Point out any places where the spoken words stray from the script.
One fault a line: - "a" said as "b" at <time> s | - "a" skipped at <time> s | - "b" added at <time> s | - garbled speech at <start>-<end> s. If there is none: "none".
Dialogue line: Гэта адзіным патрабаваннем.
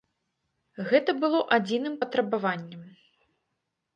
- "было" added at 1.2 s